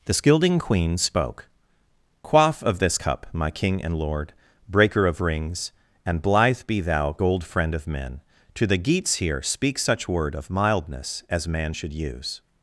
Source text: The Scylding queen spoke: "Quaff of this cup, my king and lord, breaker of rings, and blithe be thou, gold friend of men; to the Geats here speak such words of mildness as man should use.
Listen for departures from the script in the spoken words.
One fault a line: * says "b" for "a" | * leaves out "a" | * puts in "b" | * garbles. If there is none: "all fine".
* says "word" for "words"